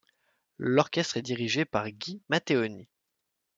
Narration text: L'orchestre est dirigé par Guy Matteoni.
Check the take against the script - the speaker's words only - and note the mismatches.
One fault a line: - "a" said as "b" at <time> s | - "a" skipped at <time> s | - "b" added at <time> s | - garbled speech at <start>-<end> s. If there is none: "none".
none